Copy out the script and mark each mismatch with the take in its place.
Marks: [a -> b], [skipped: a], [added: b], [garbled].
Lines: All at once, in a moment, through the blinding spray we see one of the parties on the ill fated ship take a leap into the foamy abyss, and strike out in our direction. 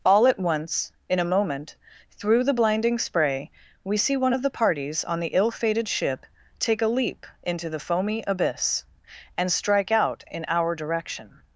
All at once, in a moment, through the blinding spray we see one of the parties on the ill fated ship take a leap into the foamy abyss, and strike out in our direction.